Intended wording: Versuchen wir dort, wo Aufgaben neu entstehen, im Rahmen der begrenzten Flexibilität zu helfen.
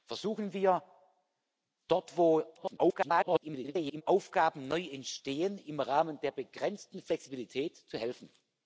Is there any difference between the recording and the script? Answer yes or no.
yes